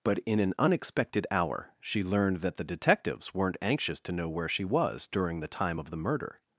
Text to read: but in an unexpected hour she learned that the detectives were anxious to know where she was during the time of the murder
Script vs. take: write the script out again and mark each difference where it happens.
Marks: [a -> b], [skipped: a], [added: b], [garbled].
but in an unexpected hour she learned that the detectives [were -> weren't] anxious to know where she was during the time of the murder